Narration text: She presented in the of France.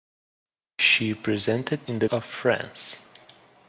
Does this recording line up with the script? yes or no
yes